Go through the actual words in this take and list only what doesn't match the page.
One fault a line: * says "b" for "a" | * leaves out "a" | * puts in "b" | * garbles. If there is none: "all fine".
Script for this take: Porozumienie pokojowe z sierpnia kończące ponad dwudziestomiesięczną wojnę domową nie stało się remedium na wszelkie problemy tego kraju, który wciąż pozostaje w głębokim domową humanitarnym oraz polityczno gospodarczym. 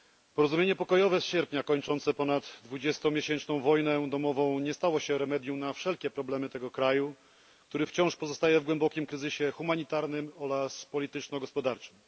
* says "kryzysie" for "domową"